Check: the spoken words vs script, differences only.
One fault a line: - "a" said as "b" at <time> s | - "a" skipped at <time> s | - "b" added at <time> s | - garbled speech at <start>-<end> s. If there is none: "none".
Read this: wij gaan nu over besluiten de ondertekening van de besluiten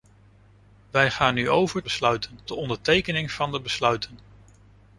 none